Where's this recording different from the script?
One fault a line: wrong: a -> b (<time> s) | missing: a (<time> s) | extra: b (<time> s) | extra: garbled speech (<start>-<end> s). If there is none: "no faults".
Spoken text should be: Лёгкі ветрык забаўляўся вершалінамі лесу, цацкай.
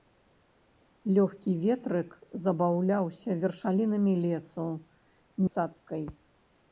no faults